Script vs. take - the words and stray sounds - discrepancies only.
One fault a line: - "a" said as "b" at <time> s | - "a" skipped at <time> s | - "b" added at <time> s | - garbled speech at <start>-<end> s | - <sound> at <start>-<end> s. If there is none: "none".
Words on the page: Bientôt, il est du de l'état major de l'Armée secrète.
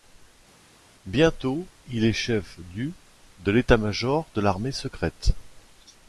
- "chef" added at 2.1 s